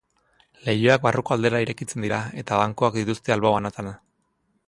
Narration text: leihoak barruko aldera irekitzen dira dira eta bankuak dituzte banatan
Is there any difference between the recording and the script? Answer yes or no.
yes